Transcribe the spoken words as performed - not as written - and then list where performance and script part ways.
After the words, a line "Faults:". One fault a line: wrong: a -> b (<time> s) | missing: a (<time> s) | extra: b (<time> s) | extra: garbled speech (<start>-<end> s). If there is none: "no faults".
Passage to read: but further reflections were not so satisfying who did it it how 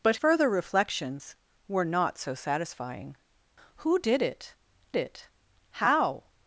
but further reflections were not so satisfying who did it it how
Faults:
no faults